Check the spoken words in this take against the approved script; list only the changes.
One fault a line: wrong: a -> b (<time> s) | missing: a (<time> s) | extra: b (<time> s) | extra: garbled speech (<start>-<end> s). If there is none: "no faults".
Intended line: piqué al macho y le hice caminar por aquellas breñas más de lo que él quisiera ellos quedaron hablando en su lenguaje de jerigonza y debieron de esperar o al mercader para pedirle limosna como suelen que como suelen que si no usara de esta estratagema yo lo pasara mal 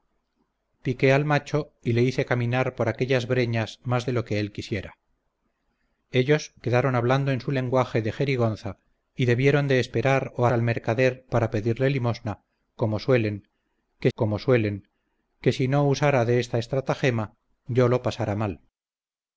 no faults